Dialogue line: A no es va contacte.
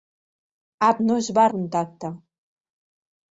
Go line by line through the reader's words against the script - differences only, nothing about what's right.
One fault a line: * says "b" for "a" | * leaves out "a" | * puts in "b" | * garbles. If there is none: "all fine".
all fine